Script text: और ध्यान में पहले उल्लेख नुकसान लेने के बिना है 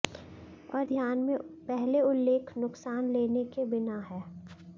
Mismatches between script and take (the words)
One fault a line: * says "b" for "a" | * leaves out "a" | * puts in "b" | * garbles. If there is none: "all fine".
all fine